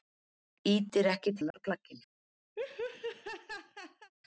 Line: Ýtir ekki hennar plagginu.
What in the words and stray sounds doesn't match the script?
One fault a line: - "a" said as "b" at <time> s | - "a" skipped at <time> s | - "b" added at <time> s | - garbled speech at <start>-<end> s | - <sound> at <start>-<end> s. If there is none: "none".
- dropout at 1.5-1.5 s
- laugh at 2.6-4.1 s